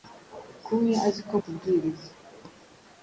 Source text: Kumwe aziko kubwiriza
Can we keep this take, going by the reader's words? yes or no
yes